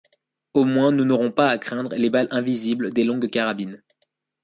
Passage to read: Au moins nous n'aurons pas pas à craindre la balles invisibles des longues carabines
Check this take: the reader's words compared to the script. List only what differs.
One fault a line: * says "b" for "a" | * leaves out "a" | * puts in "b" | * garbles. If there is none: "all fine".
* leaves out "pas"
* says "les" for "la"